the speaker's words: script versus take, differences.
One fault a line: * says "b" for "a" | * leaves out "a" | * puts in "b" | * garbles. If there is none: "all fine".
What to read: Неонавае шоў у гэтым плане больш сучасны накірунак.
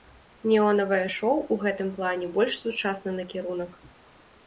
all fine